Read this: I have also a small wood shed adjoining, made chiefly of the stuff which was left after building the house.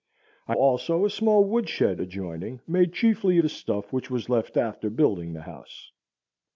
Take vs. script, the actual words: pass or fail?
fail